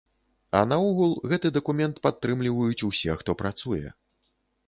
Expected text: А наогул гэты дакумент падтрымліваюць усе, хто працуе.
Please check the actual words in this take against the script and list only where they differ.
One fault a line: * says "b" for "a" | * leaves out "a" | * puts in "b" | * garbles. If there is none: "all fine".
all fine